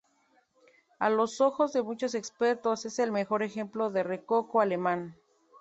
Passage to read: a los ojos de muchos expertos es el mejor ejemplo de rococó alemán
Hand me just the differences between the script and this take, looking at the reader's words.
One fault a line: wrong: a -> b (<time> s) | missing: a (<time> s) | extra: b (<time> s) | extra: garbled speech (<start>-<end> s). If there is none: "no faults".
no faults